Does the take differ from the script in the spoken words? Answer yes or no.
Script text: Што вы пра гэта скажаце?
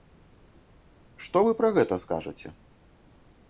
no